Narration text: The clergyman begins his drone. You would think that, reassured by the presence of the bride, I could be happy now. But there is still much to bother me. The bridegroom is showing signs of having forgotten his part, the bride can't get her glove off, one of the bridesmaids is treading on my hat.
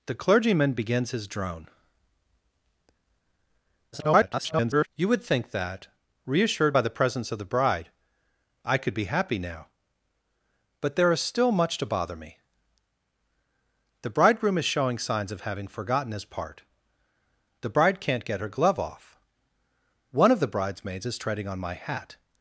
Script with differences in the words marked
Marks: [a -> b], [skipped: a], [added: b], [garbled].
The clergyman begins his drone. [garbled] You would think that, reassured by the presence of the bride, I could be happy now. But there is still much to bother me. The bridegroom is showing signs of having forgotten his part, the bride can't get her glove off, one of the bridesmaids is treading on my hat.